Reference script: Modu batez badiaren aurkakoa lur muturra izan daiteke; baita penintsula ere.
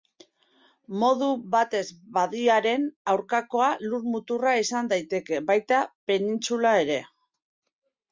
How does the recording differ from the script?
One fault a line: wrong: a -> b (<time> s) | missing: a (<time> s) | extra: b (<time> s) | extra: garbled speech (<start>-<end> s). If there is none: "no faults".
no faults